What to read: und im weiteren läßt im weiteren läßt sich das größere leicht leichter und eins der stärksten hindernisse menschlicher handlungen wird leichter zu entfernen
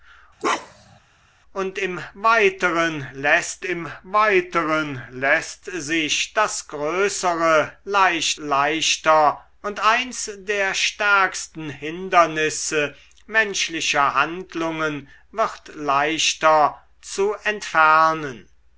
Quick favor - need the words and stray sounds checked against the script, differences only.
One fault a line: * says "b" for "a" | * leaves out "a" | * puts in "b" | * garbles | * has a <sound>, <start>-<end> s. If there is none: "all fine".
* has a bark, 0.4-1.0 s